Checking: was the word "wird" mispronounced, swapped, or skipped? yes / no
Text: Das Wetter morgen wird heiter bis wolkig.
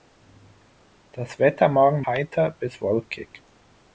yes